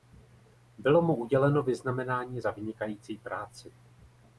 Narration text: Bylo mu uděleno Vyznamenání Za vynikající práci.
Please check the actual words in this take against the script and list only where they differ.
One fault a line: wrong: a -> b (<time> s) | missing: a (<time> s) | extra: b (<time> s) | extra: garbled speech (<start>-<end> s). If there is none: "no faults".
no faults